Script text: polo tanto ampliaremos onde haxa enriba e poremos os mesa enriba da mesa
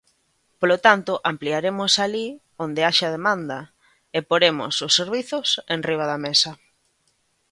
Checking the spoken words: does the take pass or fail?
fail